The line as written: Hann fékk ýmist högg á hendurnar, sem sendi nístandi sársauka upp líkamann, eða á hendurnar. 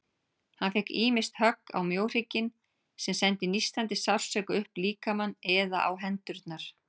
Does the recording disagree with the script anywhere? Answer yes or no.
yes